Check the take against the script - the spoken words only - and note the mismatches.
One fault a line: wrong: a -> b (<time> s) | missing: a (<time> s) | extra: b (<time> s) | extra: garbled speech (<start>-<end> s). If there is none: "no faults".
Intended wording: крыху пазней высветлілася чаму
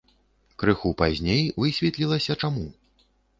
no faults